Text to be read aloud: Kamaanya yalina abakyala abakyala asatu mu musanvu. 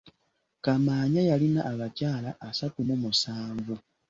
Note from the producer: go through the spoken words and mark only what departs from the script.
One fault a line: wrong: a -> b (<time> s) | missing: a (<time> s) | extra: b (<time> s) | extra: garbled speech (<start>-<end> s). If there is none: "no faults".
missing: abakyala (2.3 s)